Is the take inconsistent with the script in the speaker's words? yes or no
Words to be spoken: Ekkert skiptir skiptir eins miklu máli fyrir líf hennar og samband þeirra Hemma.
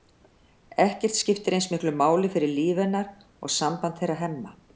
yes